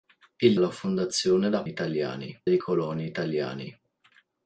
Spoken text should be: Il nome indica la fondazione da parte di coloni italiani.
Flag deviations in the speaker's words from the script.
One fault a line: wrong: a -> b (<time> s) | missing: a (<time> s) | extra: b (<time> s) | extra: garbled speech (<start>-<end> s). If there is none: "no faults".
missing: nome indica (0.6 s)
wrong: parte -> italiani (1.7 s)